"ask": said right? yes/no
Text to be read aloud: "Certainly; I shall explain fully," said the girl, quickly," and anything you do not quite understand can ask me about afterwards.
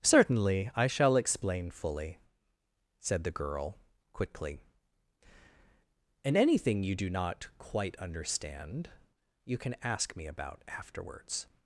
yes